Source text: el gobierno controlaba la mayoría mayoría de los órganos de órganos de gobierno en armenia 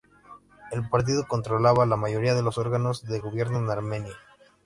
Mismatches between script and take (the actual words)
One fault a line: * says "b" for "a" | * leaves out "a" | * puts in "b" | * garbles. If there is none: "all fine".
* says "partido" for "gobierno"
* leaves out "mayoría"
* leaves out "órganos de"